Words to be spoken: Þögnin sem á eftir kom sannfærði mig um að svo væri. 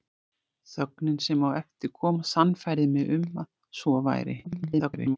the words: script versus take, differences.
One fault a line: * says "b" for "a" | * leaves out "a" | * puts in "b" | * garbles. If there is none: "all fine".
* garbles